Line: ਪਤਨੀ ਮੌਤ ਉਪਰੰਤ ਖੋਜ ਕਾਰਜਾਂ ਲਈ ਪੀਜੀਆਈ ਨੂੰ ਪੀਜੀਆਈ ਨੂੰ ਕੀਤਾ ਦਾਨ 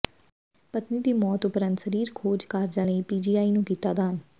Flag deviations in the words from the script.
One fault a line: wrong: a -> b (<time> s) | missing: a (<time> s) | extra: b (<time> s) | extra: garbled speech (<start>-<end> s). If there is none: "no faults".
extra: ਦੀ (1.0 s)
extra: ਸਰੀਰ (1.8 s)
missing: ਪੀਜੀਆਈ ਨੂੰ (3.6 s)